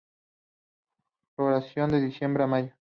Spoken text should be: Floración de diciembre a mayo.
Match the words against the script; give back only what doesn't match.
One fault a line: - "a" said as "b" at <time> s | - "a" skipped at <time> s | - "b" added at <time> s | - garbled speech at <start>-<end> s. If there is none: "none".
none